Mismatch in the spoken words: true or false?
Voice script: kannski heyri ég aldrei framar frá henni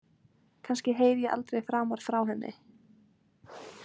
false